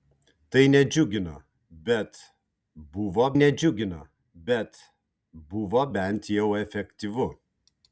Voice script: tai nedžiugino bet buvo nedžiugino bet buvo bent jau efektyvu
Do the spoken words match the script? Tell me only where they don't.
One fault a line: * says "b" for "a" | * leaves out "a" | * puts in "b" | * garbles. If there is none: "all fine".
all fine